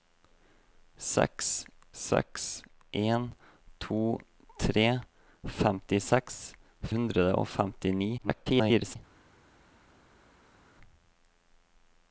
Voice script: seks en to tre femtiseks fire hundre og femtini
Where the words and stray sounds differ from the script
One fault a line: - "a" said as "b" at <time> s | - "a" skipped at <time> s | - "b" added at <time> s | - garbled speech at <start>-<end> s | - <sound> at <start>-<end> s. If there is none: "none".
- "seks" added at 2.0 s
- "fire" skipped at 6.4 s
- garbled speech at 8.2-9.0 s